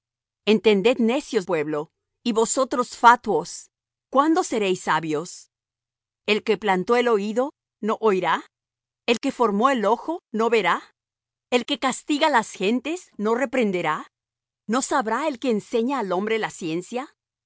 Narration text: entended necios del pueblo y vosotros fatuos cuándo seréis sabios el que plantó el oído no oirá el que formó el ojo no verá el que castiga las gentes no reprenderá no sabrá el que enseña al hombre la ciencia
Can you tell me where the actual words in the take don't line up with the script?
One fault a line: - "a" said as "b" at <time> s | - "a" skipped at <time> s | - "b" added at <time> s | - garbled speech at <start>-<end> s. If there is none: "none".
- "del" skipped at 1.4 s